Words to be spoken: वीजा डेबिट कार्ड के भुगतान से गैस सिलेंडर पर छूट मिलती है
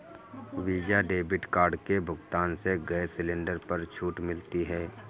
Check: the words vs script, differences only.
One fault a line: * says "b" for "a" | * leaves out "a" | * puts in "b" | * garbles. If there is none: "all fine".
all fine